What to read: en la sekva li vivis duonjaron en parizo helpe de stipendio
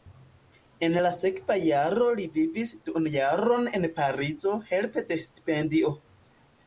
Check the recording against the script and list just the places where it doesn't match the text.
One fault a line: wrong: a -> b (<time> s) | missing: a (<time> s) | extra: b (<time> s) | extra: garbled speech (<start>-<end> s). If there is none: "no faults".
extra: jaro (1.6 s)